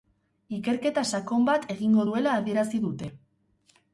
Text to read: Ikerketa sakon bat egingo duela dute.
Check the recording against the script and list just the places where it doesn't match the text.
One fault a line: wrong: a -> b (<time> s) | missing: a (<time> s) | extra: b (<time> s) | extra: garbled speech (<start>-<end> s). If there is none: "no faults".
extra: adierazi (2.4 s)